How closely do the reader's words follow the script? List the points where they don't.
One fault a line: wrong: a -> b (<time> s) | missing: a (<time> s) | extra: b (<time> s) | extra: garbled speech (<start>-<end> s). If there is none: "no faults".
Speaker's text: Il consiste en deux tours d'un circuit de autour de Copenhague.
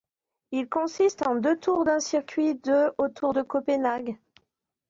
no faults